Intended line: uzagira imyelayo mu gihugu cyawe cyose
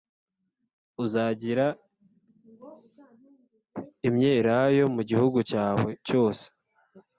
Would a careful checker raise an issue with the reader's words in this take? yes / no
no